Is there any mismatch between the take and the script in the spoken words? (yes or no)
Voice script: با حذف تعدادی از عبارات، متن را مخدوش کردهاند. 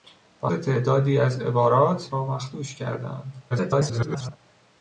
yes